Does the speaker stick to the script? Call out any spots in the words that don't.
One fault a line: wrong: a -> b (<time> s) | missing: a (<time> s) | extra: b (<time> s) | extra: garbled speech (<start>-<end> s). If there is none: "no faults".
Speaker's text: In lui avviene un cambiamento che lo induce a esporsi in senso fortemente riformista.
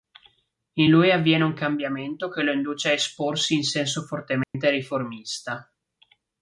no faults